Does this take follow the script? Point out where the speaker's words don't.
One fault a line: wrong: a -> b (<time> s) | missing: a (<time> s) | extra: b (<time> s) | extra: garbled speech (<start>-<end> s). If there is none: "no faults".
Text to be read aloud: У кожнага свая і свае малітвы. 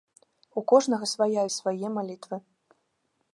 no faults